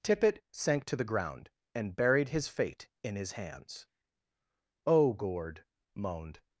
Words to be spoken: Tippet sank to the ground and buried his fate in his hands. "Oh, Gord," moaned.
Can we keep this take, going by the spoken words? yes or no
yes